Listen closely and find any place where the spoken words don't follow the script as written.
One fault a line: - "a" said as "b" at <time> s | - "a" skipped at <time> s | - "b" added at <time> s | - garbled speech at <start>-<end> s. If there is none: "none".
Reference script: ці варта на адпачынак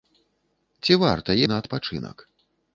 none